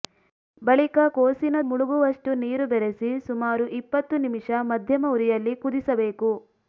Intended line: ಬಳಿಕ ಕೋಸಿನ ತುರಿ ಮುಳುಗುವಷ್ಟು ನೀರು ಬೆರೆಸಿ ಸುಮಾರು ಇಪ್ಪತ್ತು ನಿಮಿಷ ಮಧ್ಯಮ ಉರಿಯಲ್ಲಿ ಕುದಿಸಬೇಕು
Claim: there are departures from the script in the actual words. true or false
true